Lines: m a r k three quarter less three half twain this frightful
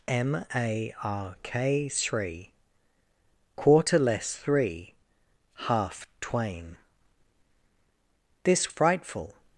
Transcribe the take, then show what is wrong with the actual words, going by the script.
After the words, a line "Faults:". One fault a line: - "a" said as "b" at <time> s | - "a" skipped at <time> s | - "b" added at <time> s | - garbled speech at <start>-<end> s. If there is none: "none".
m a r k three quarter less three half twain this frightful
Faults:
none